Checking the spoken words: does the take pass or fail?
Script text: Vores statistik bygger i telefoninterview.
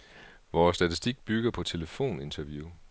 fail